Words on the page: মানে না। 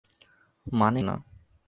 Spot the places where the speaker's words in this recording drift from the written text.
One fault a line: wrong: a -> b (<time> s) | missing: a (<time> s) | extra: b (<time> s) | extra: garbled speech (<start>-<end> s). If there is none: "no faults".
no faults